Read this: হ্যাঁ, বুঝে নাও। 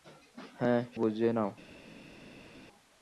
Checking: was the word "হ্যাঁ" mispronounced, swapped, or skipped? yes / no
no